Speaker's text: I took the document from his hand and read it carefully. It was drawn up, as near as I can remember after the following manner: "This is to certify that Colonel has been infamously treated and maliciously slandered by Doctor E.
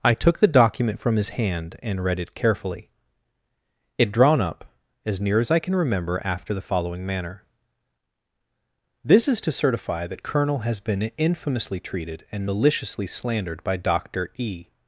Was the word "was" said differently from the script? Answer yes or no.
yes